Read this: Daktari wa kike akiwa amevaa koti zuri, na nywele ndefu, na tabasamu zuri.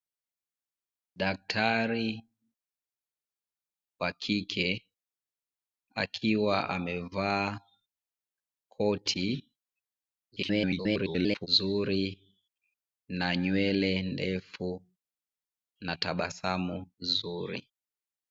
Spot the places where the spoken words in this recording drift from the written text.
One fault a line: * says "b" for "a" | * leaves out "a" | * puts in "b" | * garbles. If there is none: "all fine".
* garbles